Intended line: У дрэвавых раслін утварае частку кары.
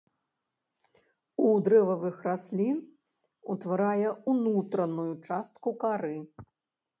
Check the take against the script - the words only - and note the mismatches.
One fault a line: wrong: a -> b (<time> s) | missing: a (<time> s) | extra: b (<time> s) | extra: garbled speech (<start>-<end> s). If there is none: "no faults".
extra: ўнутраную (4.3 s)